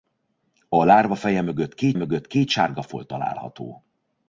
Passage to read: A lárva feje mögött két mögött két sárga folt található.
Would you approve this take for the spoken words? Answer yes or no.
yes